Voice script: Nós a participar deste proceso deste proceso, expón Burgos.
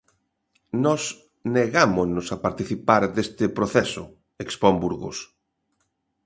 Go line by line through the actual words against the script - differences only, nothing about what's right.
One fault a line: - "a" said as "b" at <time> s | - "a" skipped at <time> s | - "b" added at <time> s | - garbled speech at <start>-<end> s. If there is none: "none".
- "negámonos" added at 1.6 s
- "deste proceso" skipped at 4.0 s